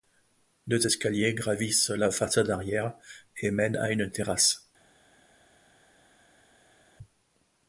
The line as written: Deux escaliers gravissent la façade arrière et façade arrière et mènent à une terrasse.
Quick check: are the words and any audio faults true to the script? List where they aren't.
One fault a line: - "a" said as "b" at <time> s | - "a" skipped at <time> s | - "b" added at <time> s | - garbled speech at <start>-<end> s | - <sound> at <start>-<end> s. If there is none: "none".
- "façade arrière et" skipped at 3.5 s